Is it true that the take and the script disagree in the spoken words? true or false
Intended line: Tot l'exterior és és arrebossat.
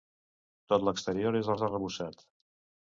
false